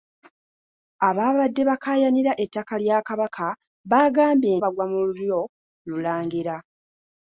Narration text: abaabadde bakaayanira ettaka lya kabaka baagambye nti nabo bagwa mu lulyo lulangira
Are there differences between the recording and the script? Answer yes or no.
yes